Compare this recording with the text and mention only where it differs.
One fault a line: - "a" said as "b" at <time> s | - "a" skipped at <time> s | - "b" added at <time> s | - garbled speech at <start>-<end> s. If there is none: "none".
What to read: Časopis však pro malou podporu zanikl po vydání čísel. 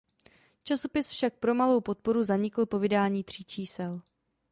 - "tří" added at 3.2 s